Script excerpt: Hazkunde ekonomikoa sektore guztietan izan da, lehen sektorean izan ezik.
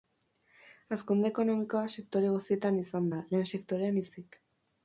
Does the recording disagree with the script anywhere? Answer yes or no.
yes